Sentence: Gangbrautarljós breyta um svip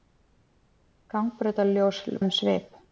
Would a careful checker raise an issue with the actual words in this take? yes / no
yes